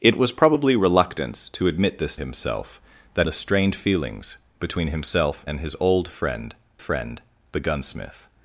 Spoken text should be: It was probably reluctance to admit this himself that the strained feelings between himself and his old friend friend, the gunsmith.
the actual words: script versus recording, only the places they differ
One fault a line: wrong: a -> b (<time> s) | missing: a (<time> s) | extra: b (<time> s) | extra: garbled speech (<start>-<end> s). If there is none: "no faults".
no faults